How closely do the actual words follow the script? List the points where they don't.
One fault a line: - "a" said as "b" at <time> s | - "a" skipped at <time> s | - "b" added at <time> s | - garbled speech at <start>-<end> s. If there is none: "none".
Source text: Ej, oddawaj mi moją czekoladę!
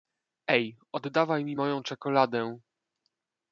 none